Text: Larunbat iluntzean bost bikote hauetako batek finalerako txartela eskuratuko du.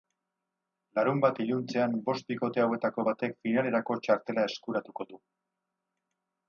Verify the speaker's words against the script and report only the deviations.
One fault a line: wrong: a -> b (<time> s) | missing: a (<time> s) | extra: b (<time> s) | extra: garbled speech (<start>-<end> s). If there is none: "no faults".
no faults